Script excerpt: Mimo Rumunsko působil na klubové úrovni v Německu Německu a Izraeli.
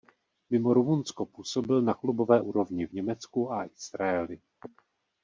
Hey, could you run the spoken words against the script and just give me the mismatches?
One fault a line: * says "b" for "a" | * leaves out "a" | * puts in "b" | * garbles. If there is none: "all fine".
* leaves out "Německu"